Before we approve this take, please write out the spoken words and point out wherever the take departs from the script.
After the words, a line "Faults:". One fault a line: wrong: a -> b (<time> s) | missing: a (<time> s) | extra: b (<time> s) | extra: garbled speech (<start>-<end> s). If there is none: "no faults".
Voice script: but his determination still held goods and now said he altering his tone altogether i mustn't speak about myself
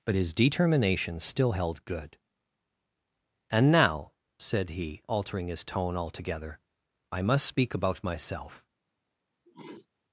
but his determination still held good and now said he altering his tone altogether i must speak about myself
Faults:
wrong: goods -> good (1.8 s)
wrong: mustn't -> must (7.2 s)